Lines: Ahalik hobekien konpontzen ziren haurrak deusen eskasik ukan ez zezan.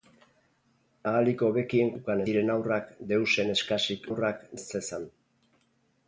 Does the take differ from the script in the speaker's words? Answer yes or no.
yes